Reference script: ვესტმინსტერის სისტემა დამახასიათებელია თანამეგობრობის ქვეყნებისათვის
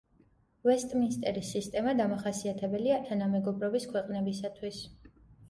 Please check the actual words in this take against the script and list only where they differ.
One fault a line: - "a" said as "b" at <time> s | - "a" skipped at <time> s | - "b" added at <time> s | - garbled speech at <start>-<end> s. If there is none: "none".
none